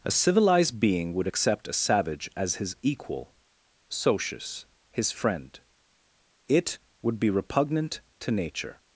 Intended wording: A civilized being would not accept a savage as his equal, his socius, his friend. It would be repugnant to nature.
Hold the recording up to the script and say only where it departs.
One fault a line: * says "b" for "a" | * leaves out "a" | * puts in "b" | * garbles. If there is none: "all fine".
* leaves out "not"
* leaves out "his"